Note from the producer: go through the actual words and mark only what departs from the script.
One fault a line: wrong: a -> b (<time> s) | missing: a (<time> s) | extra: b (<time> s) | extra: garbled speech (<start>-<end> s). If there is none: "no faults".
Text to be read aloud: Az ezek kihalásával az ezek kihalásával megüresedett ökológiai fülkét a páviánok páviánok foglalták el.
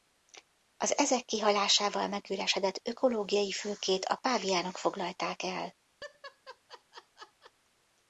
missing: az ezek kihalásával (2.1 s)
missing: páviánok (4.8 s)